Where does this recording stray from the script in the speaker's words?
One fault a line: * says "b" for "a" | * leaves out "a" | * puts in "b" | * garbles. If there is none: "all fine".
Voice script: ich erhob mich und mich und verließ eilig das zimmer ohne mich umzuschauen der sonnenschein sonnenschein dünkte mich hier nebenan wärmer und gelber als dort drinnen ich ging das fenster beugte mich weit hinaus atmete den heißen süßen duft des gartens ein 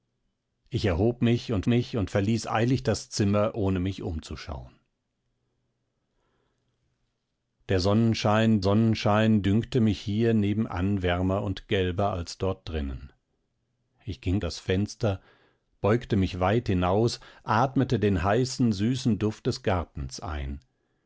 all fine